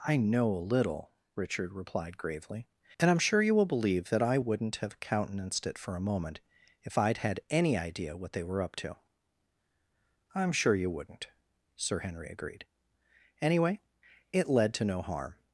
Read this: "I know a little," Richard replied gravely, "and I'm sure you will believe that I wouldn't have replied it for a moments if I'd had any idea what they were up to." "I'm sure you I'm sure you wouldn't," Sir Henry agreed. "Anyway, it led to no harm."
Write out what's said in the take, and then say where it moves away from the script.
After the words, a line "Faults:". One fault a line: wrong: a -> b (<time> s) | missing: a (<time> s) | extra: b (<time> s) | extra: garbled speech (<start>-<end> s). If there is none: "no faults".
"I know a little," Richard replied gravely, "and I'm sure you will believe that I wouldn't have countenanced it for a moment if I'd had any idea what they were up to." "I'm sure you wouldn't," Sir Henry agreed. "Anyway, it led to no harm."
Faults:
wrong: replied -> countenanced (5.0 s)
wrong: moments -> moment (6.1 s)
missing: I'm sure you (10.9 s)